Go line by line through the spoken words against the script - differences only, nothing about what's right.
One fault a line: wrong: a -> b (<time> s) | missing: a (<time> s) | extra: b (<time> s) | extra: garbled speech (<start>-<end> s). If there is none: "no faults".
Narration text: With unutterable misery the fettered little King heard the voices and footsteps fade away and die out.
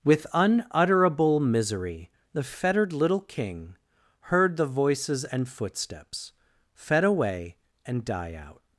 wrong: fade -> fed (6.7 s)